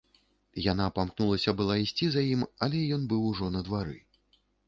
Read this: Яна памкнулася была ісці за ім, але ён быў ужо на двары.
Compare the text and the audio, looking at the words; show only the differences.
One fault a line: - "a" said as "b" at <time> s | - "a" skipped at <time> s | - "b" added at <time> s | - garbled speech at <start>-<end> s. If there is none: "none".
none